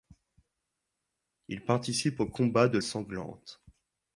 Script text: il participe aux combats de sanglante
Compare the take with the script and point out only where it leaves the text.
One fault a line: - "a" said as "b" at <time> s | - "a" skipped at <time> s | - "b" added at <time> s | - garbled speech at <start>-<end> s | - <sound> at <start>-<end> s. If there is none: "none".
none